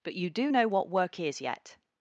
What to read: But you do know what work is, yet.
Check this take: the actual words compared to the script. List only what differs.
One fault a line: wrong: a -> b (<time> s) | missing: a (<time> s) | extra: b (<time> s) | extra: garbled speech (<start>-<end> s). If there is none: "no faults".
no faults